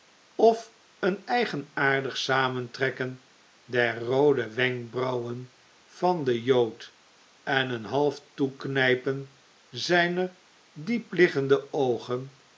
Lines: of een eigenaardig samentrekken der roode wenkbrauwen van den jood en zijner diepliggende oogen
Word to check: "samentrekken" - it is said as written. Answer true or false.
true